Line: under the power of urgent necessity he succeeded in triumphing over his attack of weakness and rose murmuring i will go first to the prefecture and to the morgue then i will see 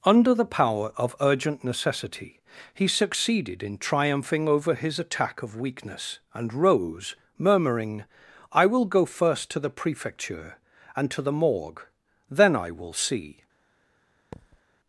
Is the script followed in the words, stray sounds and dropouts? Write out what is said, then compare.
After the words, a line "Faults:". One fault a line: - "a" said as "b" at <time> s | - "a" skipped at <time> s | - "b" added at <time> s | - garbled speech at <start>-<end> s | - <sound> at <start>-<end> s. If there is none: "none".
under the power of urgent necessity he succeeded in triumphing over his attack of weakness and rose murmuring i will go first to the prefecture and to the morgue then i will see
Faults:
- thud at 14.3-14.6 s